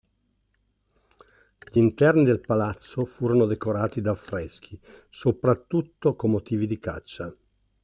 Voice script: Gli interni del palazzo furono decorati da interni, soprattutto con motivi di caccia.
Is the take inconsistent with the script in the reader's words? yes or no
yes